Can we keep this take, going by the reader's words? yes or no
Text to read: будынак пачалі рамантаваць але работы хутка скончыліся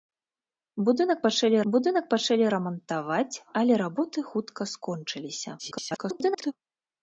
no